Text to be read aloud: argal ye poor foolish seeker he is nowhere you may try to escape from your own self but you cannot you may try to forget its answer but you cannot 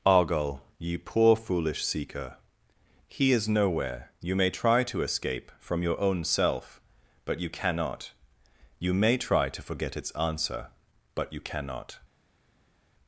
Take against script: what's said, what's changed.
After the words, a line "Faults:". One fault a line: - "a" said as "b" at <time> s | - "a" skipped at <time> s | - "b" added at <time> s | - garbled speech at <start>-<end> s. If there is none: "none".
argal ye poor foolish seeker he is nowhere you may try to escape from your own self but you cannot you may try to forget its answer but you cannot
Faults:
none